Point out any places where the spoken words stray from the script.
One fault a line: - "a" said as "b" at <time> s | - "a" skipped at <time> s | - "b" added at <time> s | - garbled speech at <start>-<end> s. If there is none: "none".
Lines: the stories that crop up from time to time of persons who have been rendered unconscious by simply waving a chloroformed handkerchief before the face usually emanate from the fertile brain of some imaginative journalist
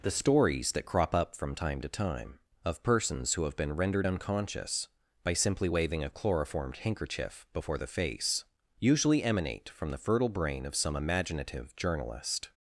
none